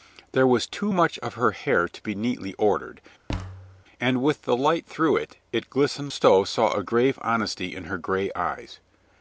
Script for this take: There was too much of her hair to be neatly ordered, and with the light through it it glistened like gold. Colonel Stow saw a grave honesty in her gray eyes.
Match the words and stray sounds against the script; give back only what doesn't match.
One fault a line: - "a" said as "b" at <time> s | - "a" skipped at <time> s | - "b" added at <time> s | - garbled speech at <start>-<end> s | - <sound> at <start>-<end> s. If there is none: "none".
- thud at 3.3-3.8 s
- "like gold Colonel" skipped at 6.1 s